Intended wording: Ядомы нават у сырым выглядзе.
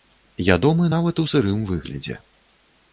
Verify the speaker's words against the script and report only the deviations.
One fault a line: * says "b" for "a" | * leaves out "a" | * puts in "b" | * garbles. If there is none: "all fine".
all fine